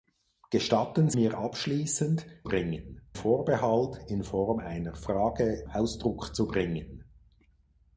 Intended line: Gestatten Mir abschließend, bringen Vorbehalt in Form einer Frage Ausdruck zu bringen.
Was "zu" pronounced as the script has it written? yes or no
yes